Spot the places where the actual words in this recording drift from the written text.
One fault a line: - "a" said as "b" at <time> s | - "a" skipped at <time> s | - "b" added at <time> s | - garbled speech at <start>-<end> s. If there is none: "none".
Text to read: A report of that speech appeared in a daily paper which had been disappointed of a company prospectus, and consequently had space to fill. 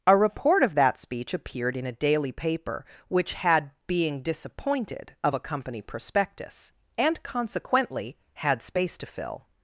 - "been" said as "being" at 3.9 s